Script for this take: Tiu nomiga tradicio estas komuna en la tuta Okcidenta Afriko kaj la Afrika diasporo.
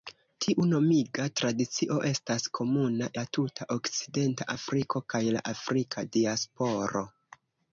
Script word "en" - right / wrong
wrong